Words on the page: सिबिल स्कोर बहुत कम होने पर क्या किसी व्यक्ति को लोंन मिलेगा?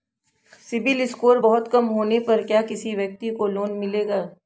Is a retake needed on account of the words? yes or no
no